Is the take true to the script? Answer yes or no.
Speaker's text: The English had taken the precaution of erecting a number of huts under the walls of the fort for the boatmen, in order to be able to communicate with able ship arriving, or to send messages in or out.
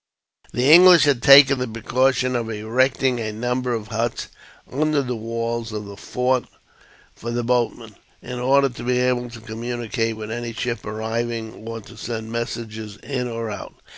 no